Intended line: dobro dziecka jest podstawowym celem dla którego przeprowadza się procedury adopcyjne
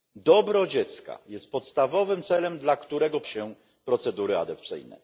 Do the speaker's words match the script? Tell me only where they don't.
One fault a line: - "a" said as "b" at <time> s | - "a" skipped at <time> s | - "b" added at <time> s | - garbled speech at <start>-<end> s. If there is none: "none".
- "przeprowadza" skipped at 3.2 s